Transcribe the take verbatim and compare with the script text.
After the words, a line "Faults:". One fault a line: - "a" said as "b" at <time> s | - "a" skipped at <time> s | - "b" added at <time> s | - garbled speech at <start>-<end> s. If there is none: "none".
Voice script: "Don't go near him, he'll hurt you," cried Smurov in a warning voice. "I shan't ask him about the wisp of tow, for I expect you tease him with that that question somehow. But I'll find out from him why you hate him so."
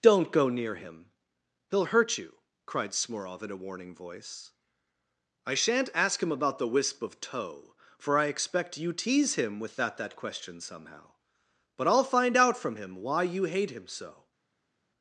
"Don't go near him, he'll hurt you," cried Smurov in a warning voice. "I shan't ask him about the wisp of tow, for I expect you tease him with that that question somehow. But I'll find out from him why you hate him so."
Faults:
none